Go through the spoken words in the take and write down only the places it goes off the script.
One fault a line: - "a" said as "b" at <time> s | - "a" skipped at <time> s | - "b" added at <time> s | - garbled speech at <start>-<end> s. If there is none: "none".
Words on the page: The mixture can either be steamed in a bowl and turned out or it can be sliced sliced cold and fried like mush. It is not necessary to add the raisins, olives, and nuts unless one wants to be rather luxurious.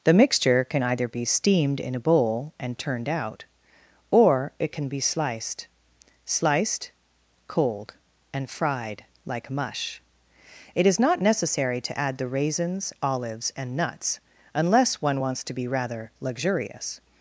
none